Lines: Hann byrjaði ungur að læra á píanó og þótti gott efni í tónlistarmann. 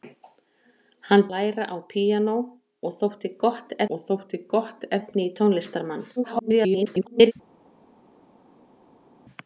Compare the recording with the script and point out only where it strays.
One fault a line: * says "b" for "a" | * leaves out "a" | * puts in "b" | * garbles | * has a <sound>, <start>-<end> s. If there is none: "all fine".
* says "læra á píanó og þótti gott" for "byrjaði ungur að læra á píanó"
* garbles